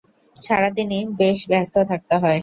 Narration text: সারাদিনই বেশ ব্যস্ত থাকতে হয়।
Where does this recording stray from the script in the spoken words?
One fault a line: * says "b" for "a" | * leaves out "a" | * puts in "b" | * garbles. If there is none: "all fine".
all fine